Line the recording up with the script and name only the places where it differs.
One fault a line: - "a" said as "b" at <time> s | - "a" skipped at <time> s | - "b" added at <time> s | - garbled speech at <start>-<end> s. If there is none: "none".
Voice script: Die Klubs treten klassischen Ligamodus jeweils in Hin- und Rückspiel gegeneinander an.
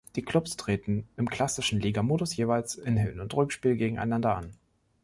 - "im" added at 1.1 s